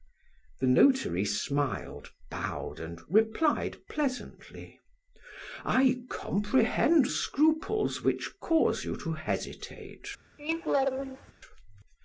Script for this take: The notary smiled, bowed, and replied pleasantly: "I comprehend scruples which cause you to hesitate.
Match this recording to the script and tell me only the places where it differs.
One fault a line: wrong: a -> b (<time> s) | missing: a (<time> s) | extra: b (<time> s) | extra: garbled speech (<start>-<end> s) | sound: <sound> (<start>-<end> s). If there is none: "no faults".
sound: laugh (10.4-11.3 s)